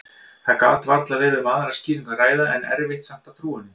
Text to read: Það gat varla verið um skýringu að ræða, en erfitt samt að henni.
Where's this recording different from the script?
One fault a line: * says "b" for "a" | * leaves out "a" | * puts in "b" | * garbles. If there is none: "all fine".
* puts in "aðra"
* puts in "trúa"